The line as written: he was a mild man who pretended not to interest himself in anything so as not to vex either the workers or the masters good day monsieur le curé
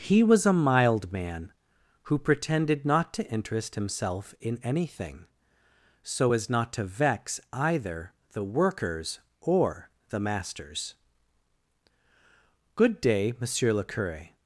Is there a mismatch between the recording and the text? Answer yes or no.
no